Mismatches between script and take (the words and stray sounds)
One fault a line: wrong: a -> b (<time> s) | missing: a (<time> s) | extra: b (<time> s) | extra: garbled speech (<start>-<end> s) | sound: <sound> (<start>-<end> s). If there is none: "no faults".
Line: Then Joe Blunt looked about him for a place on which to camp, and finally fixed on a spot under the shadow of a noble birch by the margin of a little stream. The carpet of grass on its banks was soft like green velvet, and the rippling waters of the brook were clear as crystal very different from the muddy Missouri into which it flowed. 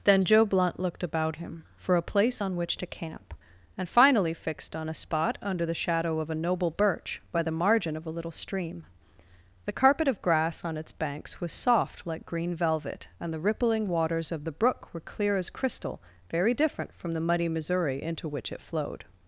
no faults